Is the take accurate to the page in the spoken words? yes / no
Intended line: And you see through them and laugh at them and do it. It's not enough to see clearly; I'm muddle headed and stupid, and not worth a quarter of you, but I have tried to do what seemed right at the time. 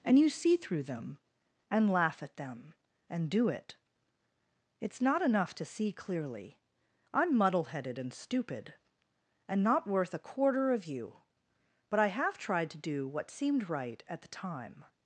yes